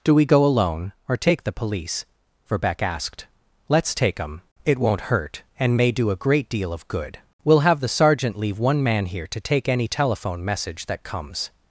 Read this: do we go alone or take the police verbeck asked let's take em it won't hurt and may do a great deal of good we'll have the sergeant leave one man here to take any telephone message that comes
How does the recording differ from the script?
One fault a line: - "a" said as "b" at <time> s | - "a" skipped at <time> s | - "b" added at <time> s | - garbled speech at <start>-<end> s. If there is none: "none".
none